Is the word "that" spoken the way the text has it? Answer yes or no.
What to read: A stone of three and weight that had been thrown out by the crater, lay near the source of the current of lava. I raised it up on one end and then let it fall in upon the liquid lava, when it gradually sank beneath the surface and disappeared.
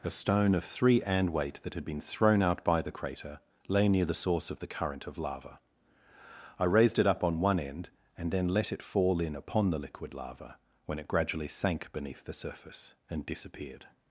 yes